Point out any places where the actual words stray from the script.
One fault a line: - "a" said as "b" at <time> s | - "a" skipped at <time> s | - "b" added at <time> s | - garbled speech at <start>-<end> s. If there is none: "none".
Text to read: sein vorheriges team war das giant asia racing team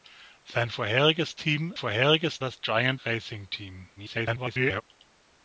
- "war" said as "vorheriges" at 1.8 s
- "asia" skipped at 3.0 s
- garbled speech at 4.0-4.8 s